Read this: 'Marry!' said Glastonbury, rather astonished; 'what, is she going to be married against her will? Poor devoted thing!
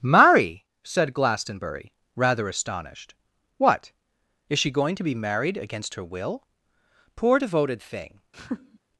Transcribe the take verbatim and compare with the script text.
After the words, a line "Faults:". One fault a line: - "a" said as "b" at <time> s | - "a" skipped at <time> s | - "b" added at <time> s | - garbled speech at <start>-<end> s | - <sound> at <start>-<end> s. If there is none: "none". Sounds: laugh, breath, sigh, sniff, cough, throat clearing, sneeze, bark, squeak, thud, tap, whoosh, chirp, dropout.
'Marry!' said Glastonbury, rather astonished; 'what, is she going to be married against her will? Poor devoted thing!
Faults:
- laugh at 8.3-8.8 s